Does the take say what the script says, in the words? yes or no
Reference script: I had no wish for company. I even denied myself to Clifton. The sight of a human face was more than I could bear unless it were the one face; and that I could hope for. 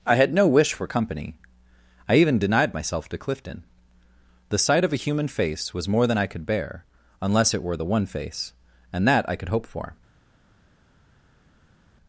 yes